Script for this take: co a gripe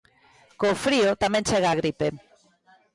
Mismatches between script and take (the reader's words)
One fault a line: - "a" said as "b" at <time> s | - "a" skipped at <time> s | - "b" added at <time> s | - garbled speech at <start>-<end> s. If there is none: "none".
- "frío tamén chega" added at 0.8 s